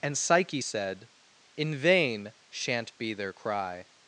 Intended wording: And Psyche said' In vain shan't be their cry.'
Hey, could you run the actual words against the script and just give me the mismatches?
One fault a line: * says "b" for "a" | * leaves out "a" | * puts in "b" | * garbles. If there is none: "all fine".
all fine